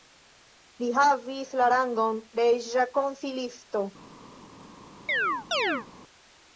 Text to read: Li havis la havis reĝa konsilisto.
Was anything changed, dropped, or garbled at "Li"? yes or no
no